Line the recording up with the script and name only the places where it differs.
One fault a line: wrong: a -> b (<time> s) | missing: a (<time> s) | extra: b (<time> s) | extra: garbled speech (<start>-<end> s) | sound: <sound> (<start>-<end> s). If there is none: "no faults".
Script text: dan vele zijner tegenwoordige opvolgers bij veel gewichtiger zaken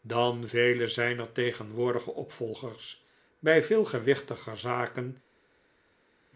no faults